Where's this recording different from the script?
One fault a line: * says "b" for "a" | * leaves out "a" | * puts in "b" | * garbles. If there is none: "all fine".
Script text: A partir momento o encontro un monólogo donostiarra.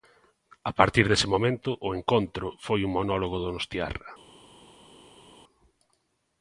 * puts in "dese"
* puts in "foi"